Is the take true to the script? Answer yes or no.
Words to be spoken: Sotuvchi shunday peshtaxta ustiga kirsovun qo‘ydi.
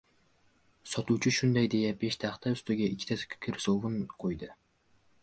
no